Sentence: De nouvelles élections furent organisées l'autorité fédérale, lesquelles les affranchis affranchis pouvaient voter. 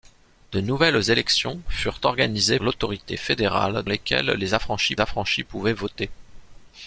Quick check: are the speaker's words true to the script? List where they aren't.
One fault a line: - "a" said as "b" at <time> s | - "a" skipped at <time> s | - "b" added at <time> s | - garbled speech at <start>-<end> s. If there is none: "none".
none